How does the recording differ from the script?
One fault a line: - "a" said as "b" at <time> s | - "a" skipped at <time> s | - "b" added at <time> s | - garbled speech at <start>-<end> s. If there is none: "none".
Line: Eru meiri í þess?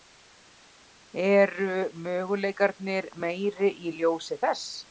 - "möguleikarnir" added at 2.1 s
- "ljósi" added at 4.0 s